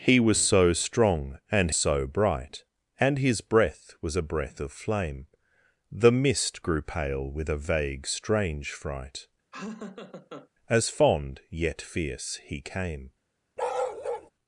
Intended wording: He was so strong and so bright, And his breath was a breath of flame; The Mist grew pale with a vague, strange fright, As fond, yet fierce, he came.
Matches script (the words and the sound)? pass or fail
fail